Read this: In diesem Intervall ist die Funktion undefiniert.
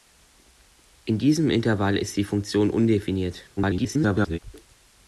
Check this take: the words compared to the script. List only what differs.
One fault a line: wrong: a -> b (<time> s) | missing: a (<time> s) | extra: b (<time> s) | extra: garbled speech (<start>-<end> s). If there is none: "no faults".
extra: garbled speech (3.6-4.4 s)